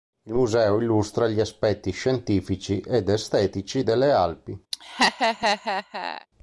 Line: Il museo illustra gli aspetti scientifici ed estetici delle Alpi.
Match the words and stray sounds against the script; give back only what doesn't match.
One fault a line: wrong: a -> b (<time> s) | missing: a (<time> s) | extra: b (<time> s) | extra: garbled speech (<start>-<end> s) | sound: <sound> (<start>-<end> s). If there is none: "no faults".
sound: laugh (4.7-6.3 s)